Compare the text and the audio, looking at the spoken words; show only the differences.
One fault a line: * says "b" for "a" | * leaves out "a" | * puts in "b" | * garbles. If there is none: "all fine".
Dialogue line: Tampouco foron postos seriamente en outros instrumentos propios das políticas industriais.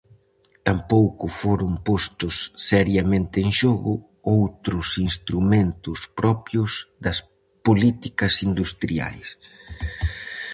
* puts in "xogo"